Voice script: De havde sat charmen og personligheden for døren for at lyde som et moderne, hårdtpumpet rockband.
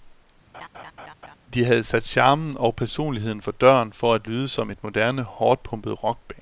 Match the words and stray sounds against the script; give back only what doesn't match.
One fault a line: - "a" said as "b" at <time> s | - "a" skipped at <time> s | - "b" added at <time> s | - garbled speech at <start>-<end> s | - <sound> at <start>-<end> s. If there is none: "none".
- laugh at 0.5-1.3 s